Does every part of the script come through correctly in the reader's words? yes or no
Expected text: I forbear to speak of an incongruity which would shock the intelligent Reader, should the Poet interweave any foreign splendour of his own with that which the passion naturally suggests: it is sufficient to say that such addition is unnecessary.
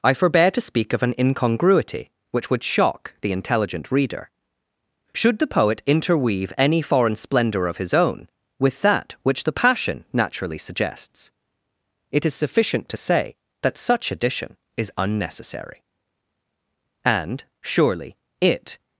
no